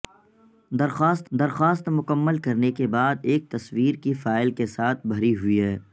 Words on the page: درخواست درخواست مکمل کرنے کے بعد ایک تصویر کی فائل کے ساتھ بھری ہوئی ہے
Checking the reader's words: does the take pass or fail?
pass